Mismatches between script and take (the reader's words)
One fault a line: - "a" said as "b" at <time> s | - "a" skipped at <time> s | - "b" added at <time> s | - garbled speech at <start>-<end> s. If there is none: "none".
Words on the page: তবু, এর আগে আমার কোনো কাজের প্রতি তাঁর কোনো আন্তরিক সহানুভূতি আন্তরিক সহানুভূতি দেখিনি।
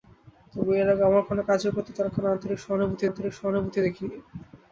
none